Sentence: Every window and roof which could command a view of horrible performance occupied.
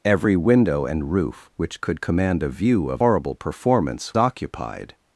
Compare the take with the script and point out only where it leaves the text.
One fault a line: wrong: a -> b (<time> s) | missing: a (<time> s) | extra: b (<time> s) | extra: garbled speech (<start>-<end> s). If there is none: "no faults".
no faults